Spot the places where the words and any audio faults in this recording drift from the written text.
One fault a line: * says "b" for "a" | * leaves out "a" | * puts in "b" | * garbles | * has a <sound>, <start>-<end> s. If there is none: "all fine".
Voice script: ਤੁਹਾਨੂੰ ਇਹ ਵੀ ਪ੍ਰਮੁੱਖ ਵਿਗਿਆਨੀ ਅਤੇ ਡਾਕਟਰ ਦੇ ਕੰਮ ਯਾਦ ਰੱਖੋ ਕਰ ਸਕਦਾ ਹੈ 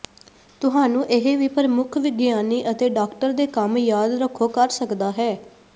all fine